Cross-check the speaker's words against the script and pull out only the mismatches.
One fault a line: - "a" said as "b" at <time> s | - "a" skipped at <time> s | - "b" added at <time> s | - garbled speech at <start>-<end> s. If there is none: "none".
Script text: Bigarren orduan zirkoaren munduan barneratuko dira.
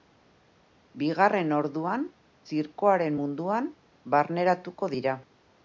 none